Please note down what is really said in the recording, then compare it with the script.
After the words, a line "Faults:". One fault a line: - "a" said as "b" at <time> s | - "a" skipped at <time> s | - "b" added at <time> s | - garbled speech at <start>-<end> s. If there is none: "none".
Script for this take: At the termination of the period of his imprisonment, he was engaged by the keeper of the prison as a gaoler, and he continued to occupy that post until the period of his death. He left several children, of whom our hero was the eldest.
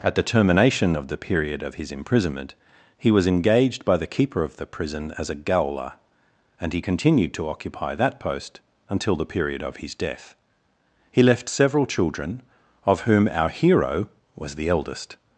At the termination of the period of his imprisonment, he was engaged by the keeper of the prison as a gaoler, and he continued to occupy that post until the period of his death. He left several children, of whom our hero was the eldest.
Faults:
none